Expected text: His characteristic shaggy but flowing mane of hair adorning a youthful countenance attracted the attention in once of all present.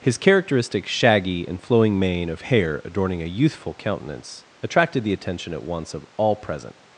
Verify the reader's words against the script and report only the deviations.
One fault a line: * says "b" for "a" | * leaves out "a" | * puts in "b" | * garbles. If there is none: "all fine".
* says "and" for "but"
* says "at" for "in"